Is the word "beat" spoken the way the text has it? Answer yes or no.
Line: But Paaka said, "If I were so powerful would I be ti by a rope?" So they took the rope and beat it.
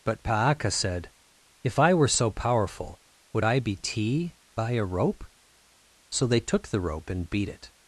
yes